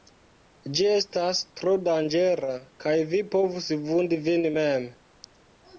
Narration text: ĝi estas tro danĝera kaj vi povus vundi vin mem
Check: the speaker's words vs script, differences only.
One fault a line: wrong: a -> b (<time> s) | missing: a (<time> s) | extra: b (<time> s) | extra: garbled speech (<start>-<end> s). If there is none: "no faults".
no faults